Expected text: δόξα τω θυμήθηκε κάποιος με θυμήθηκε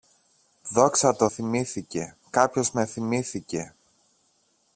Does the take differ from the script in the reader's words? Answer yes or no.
no